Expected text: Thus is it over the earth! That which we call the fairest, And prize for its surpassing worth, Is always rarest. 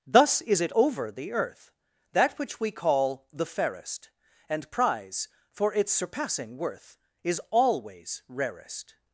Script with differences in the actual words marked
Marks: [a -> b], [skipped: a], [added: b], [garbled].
Thus is it over the earth! That which we call the fairest, And prize for its surpassing worth, Is always rarest.